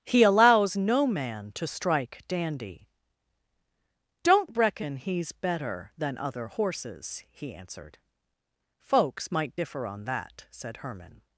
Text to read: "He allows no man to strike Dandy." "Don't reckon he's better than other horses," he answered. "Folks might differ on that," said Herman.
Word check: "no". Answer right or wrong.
right